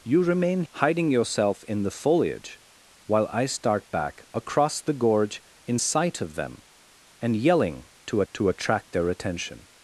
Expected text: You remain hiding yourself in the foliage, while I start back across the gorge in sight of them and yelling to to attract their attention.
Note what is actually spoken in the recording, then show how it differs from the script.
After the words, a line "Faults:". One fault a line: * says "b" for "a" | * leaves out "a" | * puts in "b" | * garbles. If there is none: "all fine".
You remain hiding yourself in the foliage, while I start back across the gorge in sight of them and yelling to to attract their attention.
Faults:
all fine